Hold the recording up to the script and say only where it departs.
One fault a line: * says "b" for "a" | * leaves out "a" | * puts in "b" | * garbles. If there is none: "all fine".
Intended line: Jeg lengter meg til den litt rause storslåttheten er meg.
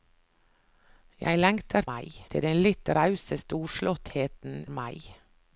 all fine